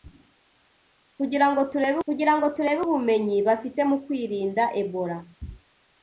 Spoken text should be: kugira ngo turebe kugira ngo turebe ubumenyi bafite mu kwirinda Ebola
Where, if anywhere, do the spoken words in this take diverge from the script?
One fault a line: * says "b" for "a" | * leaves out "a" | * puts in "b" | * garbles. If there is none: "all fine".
all fine